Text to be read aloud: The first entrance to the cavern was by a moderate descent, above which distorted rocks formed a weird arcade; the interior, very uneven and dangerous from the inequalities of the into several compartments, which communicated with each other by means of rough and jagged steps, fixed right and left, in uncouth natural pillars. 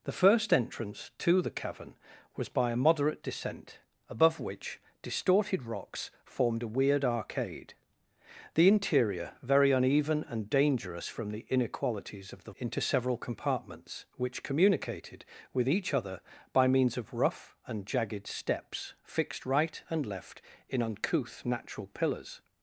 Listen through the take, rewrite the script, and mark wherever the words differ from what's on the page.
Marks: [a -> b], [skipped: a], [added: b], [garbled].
The first entrance to the cavern was by a moderate descent, above which distorted rocks formed a weird arcade; the interior, very uneven and dangerous from the inequalities of the into several compartments, which communicated with each other by means of rough and jagged steps, fixed right and left, in uncouth natural pillars.